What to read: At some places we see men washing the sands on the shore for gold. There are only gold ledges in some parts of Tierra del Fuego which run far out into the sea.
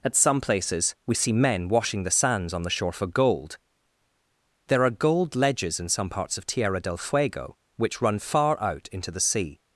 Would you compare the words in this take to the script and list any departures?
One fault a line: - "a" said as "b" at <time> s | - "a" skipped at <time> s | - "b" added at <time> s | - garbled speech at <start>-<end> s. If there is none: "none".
- "only" skipped at 4.9 s